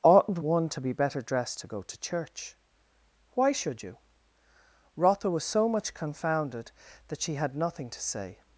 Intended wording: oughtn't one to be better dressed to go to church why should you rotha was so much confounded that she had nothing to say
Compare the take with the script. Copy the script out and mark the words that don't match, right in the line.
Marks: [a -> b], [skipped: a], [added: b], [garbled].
oughtn't one to be better dressed to go to church why should you rotha was so much confounded that she had nothing to say